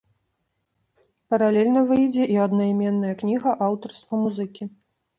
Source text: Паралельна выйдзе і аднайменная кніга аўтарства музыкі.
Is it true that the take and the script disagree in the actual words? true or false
false